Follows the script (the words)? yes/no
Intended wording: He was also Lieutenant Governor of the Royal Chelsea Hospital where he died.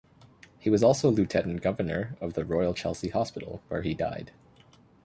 yes